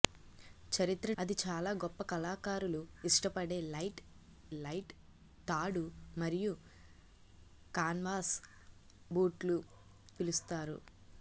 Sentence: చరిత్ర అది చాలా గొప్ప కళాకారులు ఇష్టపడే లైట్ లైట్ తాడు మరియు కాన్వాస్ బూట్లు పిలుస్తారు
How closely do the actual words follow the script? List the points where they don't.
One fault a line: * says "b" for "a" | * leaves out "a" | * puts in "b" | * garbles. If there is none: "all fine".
all fine